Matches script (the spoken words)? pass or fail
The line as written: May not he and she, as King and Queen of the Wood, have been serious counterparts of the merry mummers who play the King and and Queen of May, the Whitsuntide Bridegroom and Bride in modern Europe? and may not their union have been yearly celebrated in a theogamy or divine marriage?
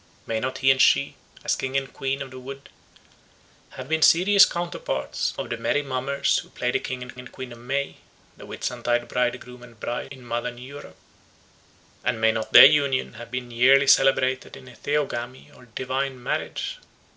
pass